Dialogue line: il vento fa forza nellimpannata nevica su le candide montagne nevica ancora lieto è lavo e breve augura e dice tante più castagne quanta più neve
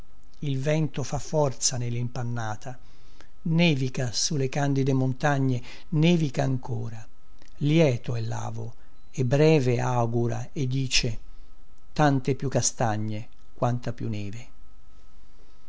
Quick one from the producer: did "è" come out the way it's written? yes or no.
yes